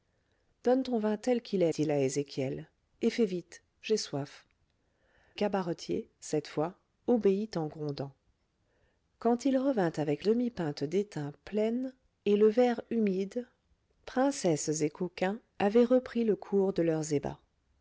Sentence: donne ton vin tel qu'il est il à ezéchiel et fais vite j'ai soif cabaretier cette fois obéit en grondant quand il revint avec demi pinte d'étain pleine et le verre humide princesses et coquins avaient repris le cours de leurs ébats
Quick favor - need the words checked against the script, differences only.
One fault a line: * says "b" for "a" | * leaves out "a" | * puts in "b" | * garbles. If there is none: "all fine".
all fine